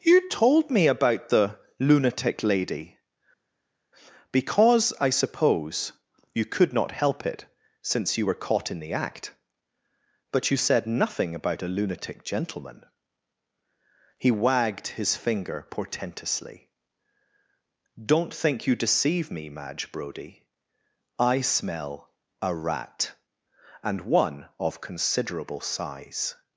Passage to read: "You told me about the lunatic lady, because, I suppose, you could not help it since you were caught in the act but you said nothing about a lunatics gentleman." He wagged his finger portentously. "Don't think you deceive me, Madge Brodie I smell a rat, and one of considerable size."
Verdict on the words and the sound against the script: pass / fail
fail